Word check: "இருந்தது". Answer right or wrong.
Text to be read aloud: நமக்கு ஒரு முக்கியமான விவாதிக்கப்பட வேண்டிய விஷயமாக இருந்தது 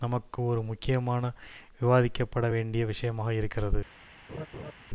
wrong